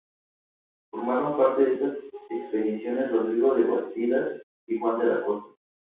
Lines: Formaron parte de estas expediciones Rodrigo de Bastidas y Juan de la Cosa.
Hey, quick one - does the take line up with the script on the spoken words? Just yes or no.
yes